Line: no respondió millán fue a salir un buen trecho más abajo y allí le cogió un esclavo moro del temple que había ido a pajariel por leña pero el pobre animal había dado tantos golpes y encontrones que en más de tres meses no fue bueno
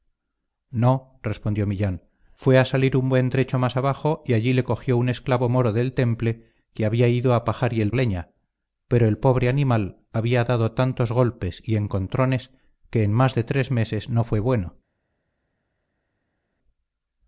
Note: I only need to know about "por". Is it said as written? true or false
false